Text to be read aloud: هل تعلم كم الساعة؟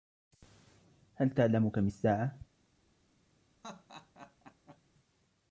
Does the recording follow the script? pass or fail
pass